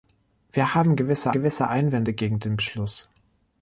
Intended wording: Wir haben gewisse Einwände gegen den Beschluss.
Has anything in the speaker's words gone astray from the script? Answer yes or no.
yes